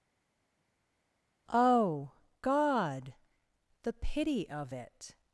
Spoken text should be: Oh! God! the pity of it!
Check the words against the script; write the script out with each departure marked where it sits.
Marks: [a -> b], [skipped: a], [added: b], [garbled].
Oh! God! the pity of it!